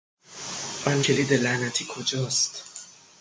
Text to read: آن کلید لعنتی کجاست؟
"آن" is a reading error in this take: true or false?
false